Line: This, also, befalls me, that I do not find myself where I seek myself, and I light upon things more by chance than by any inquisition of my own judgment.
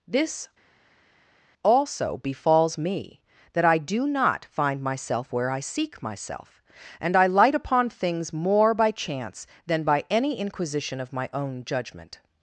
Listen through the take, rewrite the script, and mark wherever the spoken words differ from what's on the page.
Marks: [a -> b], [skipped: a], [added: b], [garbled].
This, also, befalls me, that I do not find myself where I seek myself, and I light upon things more by chance than by any inquisition of my own judgment.